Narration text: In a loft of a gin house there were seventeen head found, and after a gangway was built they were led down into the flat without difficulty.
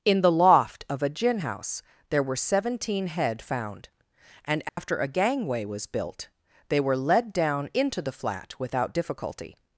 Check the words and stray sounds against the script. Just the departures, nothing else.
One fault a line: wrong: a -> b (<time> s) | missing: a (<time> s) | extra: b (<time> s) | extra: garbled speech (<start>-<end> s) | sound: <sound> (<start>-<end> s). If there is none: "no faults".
wrong: a -> the (0.2 s)
sound: dropout (4.7-4.8 s)